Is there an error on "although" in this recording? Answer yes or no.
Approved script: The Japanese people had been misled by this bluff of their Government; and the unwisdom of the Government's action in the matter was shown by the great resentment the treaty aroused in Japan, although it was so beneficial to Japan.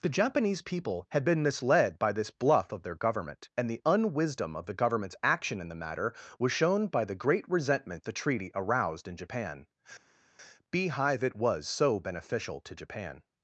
yes